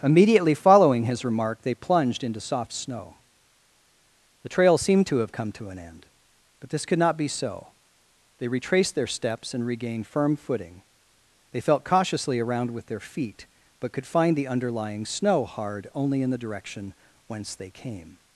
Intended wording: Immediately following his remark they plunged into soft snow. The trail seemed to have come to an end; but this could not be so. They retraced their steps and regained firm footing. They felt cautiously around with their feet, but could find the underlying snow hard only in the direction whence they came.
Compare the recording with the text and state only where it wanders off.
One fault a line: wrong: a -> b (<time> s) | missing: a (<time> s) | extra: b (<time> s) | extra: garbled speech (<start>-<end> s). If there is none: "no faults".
no faults